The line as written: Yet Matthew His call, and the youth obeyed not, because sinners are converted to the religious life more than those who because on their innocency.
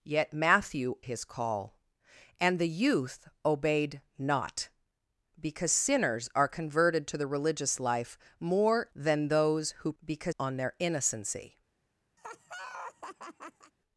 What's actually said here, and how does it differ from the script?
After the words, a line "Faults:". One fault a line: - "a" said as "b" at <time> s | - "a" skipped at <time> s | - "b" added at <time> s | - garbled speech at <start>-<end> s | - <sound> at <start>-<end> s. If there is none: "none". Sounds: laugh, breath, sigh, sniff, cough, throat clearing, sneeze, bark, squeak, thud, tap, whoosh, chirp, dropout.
Yet Matthew His call, and the youth obeyed not, because sinners are converted to the religious life more than those who because on their innocency.
Faults:
- laugh at 12.2-13.7 s